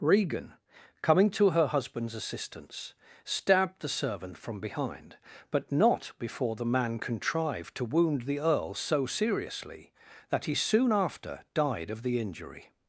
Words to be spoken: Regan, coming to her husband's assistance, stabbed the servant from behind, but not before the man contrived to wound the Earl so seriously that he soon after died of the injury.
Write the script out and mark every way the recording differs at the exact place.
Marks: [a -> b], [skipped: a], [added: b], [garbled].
Regan, coming to her husband's assistance, stabbed the servant from behind, but not before the man contrived to wound the Earl so seriously that he soon after died of the injury.